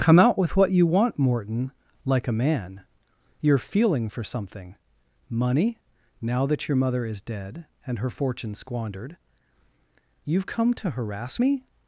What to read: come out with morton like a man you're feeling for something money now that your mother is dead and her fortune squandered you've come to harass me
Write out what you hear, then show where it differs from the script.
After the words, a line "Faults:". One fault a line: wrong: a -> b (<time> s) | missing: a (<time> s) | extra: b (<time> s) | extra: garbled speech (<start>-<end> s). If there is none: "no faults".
come out with what you want morton like a man you're feeling for something money now that your mother is dead and her fortune squandered you've come to harass me
Faults:
extra: what you want (0.6 s)